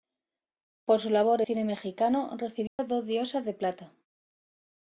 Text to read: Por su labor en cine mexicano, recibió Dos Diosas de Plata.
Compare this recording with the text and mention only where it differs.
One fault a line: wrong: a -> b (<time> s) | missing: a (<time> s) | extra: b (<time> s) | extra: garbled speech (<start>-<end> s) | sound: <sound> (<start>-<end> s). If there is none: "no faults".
missing: en (1.4 s)
sound: dropout (2.7-2.8 s)